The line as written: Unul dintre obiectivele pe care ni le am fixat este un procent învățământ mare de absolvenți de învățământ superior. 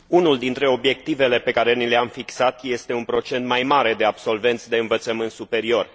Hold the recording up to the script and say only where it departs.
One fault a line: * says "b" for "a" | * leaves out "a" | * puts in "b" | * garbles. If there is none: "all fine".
* says "mai" for "învățământ"